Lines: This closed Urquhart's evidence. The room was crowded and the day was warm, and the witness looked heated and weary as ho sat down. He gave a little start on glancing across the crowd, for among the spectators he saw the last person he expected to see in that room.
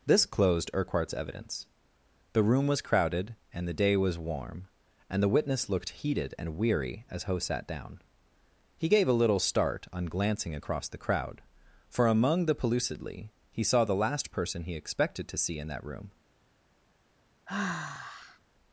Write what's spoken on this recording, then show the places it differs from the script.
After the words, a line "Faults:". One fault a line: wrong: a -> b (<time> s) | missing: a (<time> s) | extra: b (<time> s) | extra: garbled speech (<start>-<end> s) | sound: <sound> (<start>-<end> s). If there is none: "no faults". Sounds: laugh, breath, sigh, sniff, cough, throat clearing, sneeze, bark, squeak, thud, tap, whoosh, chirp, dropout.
This closed Urquhart's evidence. The room was crowded and the day was warm, and the witness looked heated and weary as ho sat down. He gave a little start on glancing across the crowd, for among the pellucidly he saw the last person he expected to see in that room.
Faults:
wrong: spectators -> pellucidly (12.6 s)
sound: sigh (17.5-18.4 s)